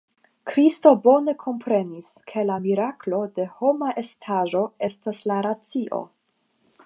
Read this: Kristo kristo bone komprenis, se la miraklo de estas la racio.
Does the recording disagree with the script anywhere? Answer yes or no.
yes